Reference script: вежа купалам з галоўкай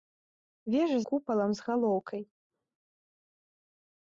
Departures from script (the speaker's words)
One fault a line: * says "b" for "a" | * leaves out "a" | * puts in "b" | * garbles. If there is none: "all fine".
all fine